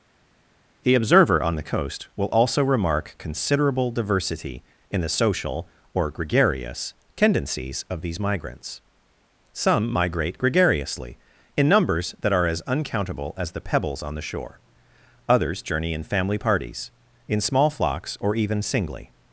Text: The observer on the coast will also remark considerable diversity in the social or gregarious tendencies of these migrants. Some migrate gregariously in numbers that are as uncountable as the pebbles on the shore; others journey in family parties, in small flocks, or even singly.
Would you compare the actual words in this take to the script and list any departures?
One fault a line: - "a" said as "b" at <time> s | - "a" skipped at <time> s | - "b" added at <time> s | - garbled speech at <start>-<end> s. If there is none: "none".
none